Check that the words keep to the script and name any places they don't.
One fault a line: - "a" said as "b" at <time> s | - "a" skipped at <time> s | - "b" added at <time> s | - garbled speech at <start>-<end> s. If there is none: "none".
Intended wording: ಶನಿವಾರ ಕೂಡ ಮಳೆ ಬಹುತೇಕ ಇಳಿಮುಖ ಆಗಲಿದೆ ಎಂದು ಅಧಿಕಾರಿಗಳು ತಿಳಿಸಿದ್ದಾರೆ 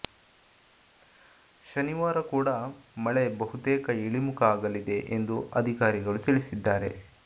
none